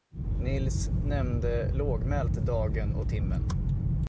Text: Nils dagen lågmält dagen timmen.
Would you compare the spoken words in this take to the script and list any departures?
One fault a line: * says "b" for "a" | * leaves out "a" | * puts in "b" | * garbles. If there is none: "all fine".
* says "nämnde" for "dagen"
* puts in "och"